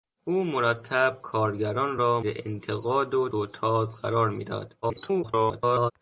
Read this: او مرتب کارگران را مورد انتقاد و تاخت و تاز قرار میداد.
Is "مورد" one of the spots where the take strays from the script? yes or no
yes